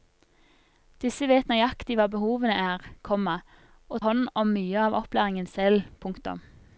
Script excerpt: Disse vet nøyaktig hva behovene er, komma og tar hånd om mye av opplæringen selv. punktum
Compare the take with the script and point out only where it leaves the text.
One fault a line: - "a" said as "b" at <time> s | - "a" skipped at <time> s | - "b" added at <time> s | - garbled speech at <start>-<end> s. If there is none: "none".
- "tar" skipped at 4.0 s